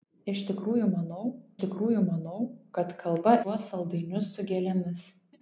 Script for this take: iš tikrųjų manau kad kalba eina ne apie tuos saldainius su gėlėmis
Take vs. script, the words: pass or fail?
fail